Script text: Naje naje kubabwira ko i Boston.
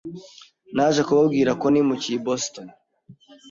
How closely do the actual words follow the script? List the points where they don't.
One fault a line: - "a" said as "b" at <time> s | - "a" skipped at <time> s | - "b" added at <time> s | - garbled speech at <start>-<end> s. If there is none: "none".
- "naje" skipped at 1.0 s
- "nimukiye" added at 1.7 s